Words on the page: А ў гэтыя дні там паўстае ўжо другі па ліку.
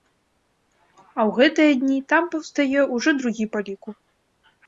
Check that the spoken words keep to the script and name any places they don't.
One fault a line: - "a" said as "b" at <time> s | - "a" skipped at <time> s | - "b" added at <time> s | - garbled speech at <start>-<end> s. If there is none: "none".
none